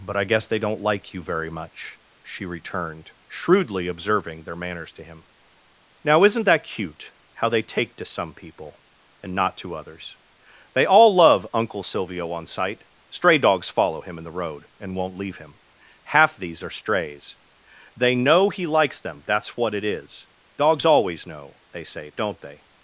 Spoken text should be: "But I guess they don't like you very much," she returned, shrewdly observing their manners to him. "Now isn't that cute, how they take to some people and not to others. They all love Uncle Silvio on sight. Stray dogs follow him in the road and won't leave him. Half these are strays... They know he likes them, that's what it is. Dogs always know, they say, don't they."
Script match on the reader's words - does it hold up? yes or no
yes